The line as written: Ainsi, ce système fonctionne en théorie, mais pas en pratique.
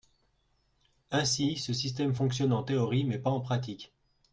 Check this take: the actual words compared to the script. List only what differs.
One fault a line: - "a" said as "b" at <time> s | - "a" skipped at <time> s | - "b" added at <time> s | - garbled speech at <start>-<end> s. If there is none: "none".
none